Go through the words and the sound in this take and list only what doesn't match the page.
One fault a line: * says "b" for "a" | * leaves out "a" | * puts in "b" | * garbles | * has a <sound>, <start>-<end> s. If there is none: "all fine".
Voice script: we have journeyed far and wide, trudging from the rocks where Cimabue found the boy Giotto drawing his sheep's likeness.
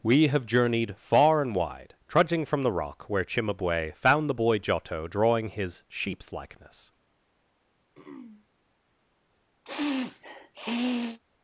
* says "rock" for "rocks"
* has a throat clearing, 7.9-8.5 s
* has a sniff, 9.7-11.2 s